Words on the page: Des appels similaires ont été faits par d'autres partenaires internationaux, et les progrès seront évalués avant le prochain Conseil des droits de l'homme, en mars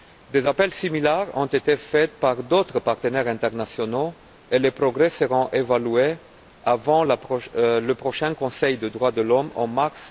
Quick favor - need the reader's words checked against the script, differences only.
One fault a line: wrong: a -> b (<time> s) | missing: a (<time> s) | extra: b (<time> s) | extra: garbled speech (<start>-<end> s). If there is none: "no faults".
no faults